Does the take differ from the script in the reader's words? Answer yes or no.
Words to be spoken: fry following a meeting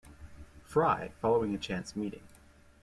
yes